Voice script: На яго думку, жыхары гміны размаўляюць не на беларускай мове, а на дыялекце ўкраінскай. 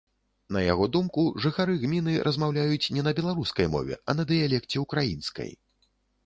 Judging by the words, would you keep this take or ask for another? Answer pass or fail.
pass